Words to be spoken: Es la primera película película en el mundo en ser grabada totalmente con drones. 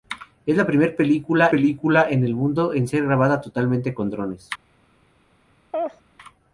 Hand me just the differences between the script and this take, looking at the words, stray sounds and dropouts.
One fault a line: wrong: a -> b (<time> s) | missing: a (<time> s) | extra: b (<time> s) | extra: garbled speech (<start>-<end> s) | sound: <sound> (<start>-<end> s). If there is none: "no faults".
sound: laugh (5.7-6.0 s)